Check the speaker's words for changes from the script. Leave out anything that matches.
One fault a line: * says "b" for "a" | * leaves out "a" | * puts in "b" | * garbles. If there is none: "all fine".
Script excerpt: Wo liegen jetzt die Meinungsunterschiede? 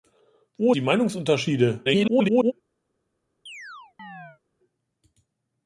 * leaves out "liegen jetzt"
* garbles